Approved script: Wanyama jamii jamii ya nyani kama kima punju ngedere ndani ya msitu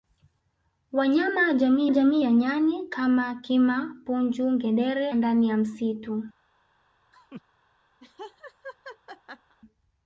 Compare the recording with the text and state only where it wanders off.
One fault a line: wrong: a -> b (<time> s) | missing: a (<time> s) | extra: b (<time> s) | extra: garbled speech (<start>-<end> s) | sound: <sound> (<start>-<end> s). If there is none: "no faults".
sound: laugh (7.1-7.4 s)
sound: laugh (8.0-9.6 s)